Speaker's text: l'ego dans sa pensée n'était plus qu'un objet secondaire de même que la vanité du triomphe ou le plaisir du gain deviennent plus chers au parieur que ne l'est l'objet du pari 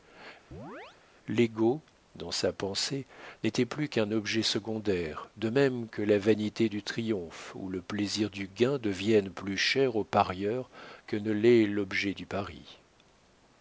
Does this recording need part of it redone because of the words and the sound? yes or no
yes